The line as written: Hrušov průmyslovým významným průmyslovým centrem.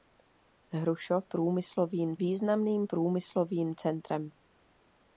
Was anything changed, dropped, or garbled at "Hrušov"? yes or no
no